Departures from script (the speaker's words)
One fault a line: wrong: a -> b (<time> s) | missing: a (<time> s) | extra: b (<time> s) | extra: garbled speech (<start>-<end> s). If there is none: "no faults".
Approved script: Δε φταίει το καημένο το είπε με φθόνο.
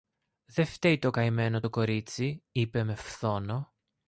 extra: κορίτσι (1.7 s)